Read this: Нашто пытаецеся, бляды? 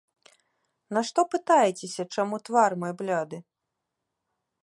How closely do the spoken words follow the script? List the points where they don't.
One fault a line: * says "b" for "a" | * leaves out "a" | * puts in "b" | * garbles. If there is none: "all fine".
* puts in "чаму твар мой"